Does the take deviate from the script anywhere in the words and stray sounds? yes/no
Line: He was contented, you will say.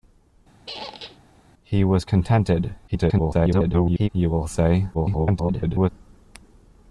yes